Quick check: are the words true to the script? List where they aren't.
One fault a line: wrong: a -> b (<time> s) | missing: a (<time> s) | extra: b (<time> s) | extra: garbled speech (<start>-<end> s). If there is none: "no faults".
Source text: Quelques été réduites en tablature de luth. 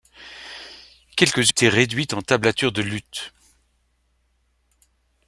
no faults